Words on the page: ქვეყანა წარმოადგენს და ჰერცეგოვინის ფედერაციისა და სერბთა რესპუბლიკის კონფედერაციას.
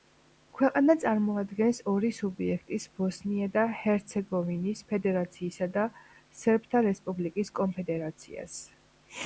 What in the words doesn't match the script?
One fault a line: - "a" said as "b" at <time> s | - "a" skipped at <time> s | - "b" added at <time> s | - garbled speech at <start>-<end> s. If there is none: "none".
- "ორი სუბიექტის ბოსნია" added at 1.9 s